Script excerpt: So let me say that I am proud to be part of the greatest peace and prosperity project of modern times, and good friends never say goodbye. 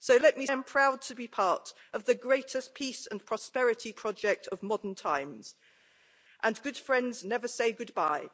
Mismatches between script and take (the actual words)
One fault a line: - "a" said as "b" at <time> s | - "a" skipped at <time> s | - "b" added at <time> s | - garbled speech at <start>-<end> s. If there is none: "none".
- "say that I" skipped at 0.5 s